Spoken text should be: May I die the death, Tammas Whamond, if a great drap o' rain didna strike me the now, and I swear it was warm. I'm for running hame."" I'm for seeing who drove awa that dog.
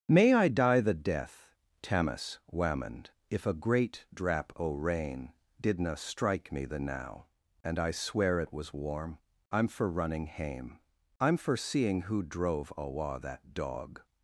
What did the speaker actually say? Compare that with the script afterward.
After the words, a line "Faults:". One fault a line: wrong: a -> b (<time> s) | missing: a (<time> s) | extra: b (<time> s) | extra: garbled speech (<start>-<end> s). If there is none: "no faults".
May I die the death, Tammas Whamond, if a great drap o' rain didna strike me the now, and I swear it was warm. I'm for running hame."" I'm for seeing who drove awa that dog.
Faults:
no faults